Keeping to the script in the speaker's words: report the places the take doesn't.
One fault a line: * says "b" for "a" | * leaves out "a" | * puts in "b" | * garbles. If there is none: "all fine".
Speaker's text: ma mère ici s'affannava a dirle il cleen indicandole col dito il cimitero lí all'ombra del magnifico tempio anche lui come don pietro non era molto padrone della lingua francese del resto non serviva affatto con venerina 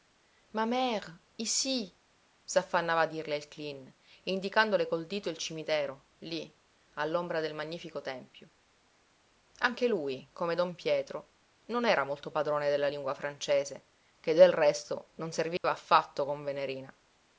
* puts in "che"